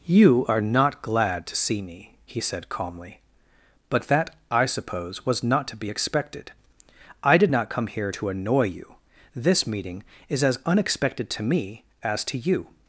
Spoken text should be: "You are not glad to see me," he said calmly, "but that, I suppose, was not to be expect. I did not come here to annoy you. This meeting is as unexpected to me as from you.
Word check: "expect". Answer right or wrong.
wrong